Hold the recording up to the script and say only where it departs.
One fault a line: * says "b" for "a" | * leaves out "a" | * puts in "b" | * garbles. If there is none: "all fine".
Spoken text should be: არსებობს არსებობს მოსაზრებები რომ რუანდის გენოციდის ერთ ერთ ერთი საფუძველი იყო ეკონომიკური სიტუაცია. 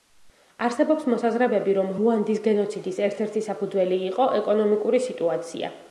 * leaves out "არსებობს"
* leaves out "ერთ"